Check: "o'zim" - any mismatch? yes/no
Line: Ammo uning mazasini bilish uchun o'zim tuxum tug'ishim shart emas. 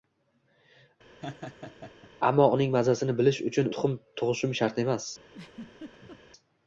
yes